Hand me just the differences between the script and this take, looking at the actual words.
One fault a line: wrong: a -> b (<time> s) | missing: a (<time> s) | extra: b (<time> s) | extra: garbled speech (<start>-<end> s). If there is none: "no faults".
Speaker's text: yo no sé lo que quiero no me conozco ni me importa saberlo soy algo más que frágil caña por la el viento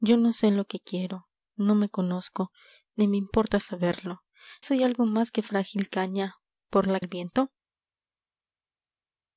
no faults